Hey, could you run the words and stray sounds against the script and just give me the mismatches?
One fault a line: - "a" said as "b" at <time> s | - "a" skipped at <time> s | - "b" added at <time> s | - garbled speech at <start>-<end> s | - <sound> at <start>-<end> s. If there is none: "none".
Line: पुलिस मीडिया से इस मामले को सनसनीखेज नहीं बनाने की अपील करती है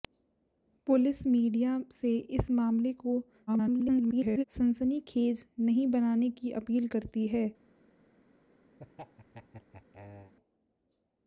- garbled speech at 3.5-4.4 s
- laugh at 8.8-10.3 s